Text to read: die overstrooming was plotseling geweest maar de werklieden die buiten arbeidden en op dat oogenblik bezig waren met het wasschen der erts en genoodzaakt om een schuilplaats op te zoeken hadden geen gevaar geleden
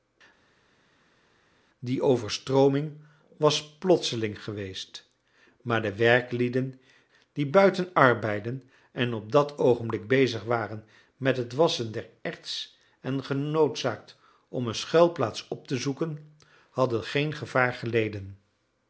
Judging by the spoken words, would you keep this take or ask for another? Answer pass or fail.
pass